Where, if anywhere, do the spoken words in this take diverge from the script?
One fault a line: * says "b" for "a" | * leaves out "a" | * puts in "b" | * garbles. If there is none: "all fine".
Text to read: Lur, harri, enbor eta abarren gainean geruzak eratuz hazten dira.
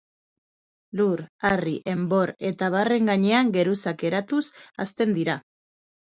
all fine